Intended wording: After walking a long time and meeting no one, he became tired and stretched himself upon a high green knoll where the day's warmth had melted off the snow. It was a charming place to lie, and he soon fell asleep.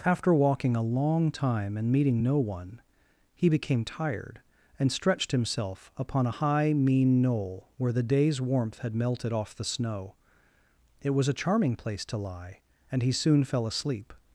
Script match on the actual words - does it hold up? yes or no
no